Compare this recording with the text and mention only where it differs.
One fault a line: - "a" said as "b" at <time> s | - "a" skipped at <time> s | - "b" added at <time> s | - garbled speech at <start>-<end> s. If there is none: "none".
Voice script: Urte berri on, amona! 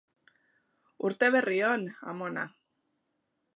none